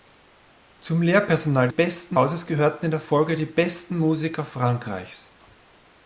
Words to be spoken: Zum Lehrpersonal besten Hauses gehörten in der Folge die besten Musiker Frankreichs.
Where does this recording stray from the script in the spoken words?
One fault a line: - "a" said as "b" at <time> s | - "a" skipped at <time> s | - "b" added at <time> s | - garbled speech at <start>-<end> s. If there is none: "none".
none